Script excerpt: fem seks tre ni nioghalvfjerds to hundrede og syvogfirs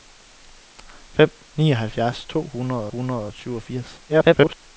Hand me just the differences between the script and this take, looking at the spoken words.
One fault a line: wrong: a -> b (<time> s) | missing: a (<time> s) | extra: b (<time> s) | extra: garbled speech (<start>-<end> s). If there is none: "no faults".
missing: seks tre ni (1.3 s)
extra: hundrede (2.9 s)
extra: garbled speech (4.1-4.6 s)